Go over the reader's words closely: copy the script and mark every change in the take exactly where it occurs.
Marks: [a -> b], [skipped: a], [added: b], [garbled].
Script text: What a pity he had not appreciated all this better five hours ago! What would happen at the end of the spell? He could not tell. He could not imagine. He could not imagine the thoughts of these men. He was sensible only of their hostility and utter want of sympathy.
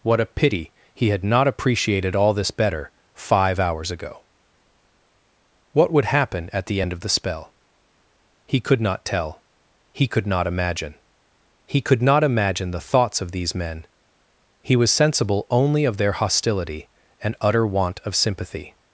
What a pity he had not appreciated all this better five hours ago! What would happen at the end of the spell? He could not tell. He could not imagine. He could not imagine the thoughts of these men. He was sensible only of their hostility and utter want of sympathy.